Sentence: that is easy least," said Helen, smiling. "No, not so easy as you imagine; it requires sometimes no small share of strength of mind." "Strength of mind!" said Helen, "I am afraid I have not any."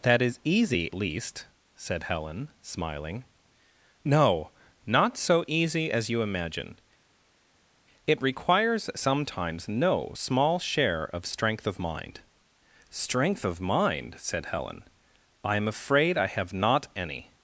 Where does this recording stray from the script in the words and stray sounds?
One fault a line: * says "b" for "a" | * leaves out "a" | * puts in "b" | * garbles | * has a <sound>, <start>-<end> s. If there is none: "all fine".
all fine